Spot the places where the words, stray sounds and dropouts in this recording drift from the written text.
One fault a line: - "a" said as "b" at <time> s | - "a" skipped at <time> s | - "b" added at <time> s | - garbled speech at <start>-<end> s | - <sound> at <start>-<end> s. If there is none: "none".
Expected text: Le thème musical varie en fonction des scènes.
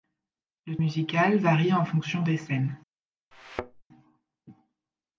- "thème" skipped at 0.8 s
- thud at 3.3-3.8 s